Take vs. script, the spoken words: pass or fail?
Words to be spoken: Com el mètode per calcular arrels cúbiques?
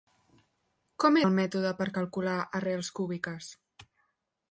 pass